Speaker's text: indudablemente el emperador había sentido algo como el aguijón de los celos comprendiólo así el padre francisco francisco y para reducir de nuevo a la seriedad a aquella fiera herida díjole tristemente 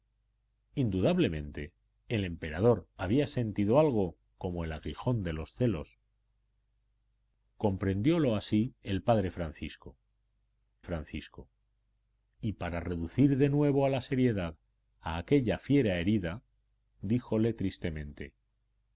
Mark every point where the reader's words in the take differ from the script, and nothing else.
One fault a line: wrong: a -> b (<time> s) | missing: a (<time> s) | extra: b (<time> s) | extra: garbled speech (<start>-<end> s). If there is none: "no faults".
no faults